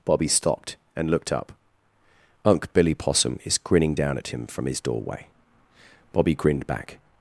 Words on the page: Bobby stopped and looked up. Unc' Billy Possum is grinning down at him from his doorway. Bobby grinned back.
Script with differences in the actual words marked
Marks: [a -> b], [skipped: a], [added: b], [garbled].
Bobby stopped and looked up. Unc' Billy Possum is grinning down at him from his doorway. Bobby grinned back.